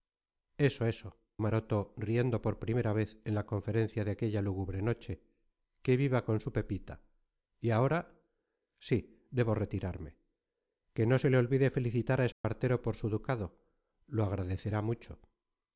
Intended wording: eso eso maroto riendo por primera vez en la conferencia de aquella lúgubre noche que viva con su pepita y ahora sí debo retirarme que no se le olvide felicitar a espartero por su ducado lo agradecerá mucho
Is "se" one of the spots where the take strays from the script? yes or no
no